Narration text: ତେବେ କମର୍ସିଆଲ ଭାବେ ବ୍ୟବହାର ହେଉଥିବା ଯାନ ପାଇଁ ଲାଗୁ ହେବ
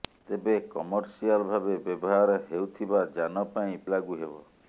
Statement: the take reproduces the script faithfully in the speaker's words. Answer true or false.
true